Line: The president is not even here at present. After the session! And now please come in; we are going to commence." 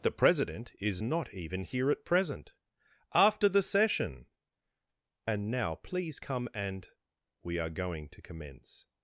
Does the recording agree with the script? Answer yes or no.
no